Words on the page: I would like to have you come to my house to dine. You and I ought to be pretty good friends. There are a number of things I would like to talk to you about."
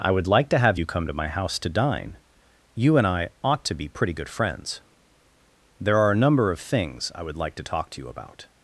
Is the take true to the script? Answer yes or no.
yes